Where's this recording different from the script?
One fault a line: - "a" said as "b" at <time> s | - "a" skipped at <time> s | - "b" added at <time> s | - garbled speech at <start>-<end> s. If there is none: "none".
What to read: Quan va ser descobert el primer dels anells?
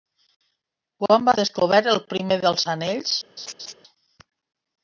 - "ser" skipped at 1.4 s